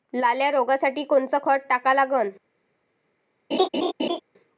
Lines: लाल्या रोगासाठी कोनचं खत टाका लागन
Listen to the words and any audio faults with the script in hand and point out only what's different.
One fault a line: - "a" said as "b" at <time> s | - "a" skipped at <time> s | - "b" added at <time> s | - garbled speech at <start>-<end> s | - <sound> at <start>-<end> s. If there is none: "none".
- laugh at 3.5-4.2 s